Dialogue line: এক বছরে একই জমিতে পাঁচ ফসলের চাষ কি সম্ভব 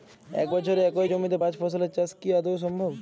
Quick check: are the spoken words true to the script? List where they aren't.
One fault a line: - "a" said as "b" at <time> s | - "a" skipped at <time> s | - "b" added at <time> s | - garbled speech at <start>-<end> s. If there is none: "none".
- "আদৌ" added at 2.3 s